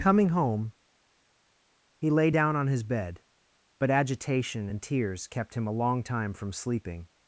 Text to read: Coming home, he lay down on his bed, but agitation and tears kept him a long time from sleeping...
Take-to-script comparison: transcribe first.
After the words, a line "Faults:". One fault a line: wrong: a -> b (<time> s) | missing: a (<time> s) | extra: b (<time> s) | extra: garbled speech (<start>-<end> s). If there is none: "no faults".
Coming home, he lay down on his bed, but agitation and tears kept him a long time from sleeping...
Faults:
no faults